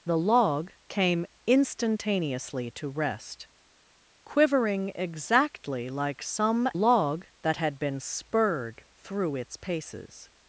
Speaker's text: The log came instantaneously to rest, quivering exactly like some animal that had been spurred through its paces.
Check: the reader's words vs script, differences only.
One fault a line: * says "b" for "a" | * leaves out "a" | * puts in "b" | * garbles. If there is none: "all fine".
* says "log" for "animal"